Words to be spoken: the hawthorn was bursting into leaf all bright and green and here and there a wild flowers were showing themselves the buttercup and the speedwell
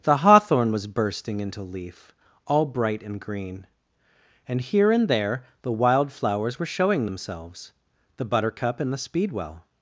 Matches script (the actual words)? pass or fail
fail